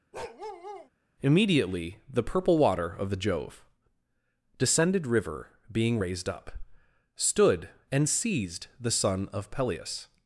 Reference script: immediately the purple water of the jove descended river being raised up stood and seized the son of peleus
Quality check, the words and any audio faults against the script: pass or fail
fail